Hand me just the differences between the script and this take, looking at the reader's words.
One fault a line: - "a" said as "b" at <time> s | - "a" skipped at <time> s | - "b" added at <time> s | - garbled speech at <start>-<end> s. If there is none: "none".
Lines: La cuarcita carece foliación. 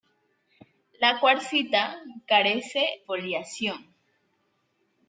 none